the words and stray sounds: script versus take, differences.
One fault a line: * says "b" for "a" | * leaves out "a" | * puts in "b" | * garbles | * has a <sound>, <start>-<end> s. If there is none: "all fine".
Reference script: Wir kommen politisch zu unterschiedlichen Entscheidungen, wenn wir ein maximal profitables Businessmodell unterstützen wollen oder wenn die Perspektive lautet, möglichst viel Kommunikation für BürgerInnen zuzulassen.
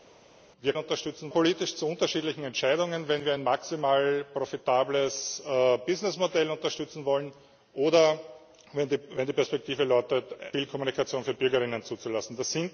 * says "unterstützen" for "kommen"
* leaves out "möglichst"